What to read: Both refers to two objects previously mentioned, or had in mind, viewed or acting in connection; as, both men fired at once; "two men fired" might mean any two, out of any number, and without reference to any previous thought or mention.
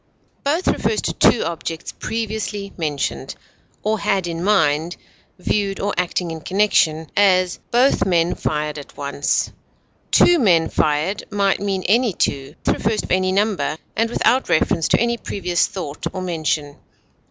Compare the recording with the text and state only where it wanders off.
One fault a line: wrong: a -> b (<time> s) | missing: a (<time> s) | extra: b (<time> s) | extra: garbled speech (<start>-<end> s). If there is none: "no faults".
wrong: out -> refers (12.7 s)